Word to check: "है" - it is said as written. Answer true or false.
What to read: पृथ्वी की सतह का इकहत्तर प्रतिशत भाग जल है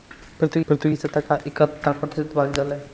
true